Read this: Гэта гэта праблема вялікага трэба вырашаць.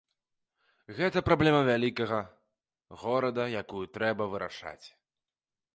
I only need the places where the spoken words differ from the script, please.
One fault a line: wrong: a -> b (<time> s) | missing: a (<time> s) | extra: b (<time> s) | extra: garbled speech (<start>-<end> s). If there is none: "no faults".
missing: гэта (1.2 s)
extra: горада якую (3.0 s)